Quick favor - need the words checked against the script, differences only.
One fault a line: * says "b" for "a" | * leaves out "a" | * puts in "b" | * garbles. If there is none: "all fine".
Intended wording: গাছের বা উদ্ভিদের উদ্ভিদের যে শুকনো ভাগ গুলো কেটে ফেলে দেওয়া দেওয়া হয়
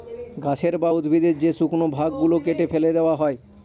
* leaves out "উদ্ভিদের"
* leaves out "দেওয়া"